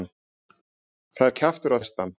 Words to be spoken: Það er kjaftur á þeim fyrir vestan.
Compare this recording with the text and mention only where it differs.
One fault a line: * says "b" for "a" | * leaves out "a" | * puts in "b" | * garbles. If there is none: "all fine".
* leaves out "þeim fyrir"